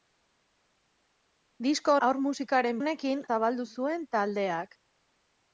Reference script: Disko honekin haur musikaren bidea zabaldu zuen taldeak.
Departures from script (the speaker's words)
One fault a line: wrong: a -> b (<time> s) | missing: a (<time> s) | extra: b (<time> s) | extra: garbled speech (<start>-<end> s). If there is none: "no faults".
missing: honekin (1.9 s)
wrong: bidea -> honekin (2.8 s)